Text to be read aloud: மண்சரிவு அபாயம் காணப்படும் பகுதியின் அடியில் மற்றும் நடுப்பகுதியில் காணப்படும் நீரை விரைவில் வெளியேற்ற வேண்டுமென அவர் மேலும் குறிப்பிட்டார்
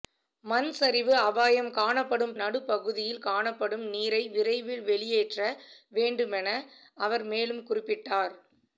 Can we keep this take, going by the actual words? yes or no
no